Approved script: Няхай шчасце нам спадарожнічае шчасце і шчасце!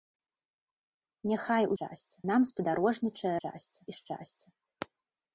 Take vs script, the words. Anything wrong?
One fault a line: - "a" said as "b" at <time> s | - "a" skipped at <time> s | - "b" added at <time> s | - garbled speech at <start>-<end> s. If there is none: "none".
none